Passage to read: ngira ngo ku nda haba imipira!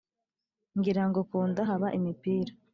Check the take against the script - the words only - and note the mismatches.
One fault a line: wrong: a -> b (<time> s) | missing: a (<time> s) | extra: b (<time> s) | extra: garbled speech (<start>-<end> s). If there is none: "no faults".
no faults